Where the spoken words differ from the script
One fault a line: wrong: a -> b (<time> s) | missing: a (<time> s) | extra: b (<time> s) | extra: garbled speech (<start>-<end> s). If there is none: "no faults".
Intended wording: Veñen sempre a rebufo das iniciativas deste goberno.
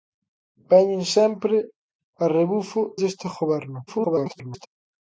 missing: das iniciativas (2.8 s)
extra: garbled speech (3.9-4.7 s)